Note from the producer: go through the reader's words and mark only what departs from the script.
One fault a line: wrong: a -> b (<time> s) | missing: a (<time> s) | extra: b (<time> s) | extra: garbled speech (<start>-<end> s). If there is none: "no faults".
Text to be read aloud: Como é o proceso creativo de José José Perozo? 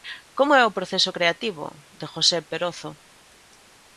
missing: José (2.4 s)